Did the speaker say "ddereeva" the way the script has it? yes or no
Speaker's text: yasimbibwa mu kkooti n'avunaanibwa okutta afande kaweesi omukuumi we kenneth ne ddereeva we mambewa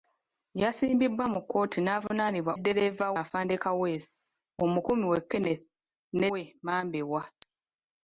no